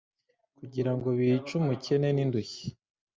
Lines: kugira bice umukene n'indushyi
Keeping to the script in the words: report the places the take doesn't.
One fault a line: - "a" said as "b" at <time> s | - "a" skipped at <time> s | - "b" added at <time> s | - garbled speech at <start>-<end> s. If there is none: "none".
- "ngo" added at 0.9 s